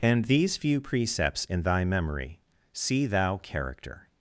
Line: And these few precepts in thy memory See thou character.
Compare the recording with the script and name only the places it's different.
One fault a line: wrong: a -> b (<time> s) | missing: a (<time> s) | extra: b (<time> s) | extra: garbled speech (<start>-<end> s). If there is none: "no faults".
no faults